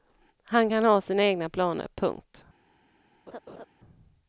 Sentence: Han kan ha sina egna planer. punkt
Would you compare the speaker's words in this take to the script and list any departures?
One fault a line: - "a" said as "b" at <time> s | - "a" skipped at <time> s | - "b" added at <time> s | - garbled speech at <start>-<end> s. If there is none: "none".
none